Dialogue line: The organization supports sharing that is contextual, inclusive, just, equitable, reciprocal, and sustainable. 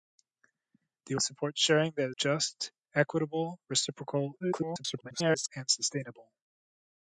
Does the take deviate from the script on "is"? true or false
true